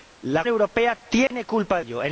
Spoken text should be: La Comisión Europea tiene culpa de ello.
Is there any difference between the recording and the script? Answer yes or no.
yes